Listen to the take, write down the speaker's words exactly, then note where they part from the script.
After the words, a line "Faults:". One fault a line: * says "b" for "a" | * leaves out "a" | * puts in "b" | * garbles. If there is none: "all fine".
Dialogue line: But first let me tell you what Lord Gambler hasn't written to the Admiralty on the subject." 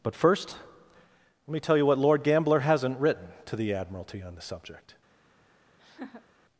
But first let me tell you what Lord Gambler hasn't written to the Admiralty on the subject."
Faults:
all fine